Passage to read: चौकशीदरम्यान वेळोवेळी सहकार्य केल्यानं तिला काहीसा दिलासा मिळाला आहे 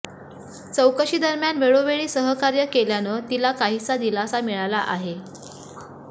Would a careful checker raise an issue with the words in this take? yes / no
no